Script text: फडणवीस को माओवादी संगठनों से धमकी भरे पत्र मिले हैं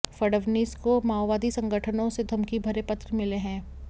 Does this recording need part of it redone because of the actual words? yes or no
no